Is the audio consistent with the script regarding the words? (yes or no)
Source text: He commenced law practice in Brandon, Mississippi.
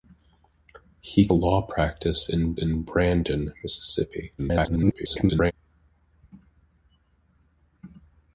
no